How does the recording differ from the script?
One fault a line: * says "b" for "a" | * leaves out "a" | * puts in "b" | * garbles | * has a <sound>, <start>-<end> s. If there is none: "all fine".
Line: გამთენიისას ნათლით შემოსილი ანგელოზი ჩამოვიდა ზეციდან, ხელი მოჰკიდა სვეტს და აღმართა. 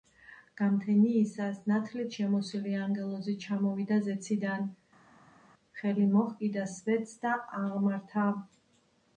all fine